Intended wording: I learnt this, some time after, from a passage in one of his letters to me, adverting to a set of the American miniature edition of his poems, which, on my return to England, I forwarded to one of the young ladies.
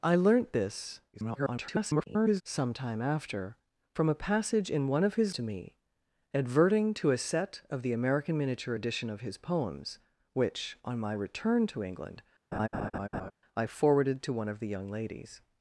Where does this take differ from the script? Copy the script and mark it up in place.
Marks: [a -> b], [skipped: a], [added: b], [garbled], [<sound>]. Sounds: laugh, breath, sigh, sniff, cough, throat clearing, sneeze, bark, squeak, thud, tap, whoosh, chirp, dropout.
I learnt this, [garbled] some time after, from a passage in one of his [skipped: letters] to me, adverting to a set of the American miniature edition of his poems, which, on my return to England, [laugh] I forwarded to one of the young ladies.